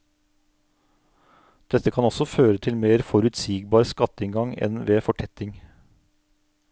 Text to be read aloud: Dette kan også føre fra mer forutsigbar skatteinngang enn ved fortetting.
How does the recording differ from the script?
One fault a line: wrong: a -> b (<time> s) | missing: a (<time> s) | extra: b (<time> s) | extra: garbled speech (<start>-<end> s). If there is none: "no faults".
wrong: fra -> til (2.7 s)